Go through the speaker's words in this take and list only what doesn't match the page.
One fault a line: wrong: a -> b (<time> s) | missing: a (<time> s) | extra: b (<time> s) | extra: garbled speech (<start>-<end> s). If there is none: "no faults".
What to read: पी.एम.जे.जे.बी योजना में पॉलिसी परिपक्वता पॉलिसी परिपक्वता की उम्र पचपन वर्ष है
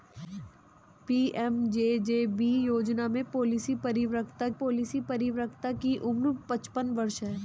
no faults